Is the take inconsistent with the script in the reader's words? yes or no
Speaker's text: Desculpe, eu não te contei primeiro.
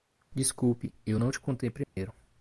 no